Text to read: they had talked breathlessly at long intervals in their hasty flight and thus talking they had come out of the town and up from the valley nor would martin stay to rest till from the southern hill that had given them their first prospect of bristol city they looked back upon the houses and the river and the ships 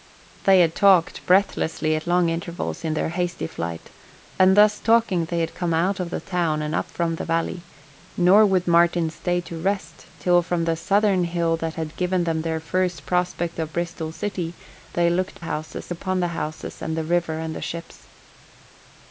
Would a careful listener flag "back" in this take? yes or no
yes